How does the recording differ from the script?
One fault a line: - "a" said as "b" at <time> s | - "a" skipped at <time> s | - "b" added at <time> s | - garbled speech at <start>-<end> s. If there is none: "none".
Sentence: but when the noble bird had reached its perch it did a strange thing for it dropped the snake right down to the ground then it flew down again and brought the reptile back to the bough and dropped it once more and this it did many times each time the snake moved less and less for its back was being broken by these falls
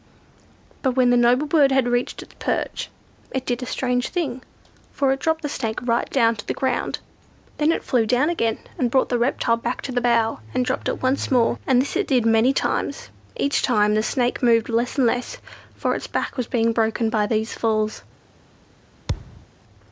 none